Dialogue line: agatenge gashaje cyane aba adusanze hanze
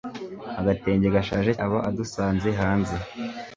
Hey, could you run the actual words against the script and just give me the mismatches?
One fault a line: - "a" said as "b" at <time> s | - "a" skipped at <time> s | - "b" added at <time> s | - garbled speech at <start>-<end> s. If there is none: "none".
- "cyane" skipped at 1.5 s